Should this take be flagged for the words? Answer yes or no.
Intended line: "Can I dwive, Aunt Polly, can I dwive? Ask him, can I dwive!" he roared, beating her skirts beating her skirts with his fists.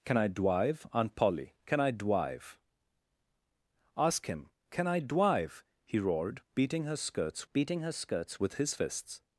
no